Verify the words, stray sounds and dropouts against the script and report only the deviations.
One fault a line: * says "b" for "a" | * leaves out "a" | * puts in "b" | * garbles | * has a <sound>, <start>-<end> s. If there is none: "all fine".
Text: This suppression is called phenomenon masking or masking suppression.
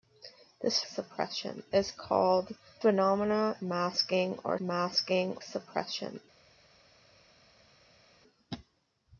all fine